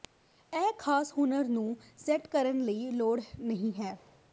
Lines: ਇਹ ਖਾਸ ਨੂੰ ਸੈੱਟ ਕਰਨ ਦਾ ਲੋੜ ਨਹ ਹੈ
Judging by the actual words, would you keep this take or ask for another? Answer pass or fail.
fail